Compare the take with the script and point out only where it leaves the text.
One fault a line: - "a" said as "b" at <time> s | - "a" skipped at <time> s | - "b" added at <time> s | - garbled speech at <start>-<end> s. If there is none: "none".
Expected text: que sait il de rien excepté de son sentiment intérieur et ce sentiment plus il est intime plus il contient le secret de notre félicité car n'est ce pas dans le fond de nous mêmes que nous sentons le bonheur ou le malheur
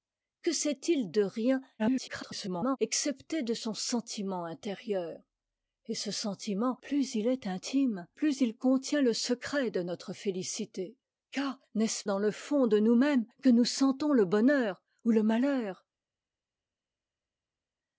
- garbled speech at 1.8-2.8 s
- "pas" skipped at 12.0 s